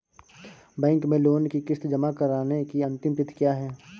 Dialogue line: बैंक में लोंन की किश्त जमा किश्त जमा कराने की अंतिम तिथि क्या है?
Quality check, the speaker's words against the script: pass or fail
fail